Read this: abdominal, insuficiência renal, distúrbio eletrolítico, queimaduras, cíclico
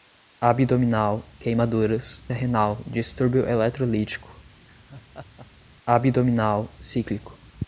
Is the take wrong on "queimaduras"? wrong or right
wrong